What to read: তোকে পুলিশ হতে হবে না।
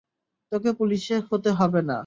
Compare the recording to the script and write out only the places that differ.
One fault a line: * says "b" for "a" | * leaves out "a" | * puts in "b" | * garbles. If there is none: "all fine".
all fine